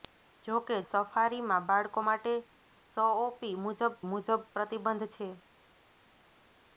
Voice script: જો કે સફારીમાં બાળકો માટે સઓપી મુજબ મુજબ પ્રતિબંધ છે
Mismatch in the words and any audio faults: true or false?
false